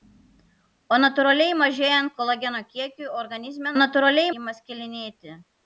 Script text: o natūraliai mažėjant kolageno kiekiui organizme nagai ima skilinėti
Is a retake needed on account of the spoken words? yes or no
yes